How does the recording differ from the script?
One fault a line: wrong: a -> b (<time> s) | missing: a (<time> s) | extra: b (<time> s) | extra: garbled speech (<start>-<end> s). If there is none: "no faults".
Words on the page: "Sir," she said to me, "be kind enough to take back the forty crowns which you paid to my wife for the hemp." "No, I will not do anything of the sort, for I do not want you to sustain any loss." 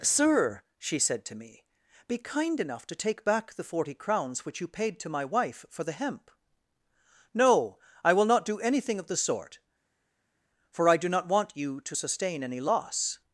no faults